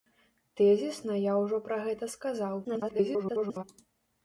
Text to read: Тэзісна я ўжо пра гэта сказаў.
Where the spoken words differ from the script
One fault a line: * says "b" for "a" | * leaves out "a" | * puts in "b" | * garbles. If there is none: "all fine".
* garbles